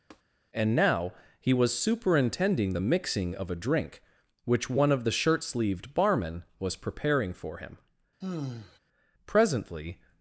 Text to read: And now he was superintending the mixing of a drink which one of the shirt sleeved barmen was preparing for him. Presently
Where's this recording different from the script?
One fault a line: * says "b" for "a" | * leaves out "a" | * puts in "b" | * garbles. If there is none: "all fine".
all fine